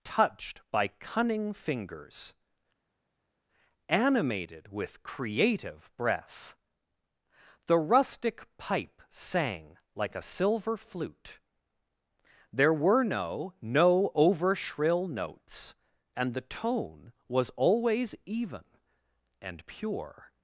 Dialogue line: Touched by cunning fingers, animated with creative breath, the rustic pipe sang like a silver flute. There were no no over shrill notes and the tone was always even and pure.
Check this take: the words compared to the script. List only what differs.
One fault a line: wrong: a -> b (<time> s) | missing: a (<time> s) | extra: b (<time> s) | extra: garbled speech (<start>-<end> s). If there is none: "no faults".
no faults